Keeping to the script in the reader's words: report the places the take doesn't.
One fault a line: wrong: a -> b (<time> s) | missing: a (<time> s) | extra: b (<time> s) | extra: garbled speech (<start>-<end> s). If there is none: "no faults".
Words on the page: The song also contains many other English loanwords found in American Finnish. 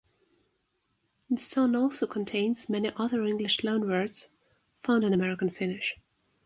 no faults